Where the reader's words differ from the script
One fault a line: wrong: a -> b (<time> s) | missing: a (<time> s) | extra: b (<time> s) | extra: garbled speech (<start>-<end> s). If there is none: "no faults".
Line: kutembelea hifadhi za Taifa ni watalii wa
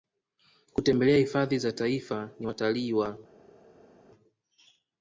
no faults